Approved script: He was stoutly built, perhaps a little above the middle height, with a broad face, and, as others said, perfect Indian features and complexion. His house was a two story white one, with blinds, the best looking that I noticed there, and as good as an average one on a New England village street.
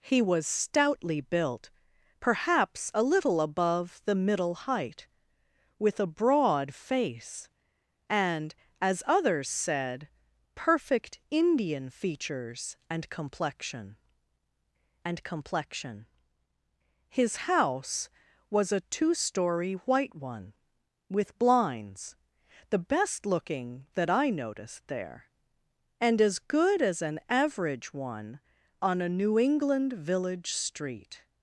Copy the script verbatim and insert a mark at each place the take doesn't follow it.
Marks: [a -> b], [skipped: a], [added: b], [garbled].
He was stoutly built, perhaps a little above the middle height, with a broad face, and, as others said, perfect Indian features and complexion. [added: and complexion] His house was a two story white one, with blinds, the best looking that I noticed there, and as good as an average one on a New England village street.